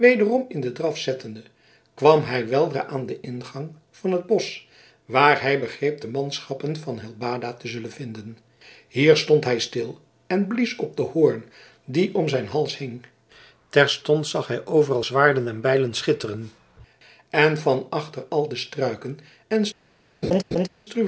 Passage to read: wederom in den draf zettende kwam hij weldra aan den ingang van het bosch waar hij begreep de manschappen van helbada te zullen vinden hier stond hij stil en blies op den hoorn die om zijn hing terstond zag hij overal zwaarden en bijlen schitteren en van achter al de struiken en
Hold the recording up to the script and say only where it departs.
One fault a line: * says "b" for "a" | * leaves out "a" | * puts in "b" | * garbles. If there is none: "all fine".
* puts in "hals"